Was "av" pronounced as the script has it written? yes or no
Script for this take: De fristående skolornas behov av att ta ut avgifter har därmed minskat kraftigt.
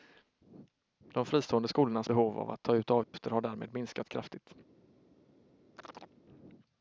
yes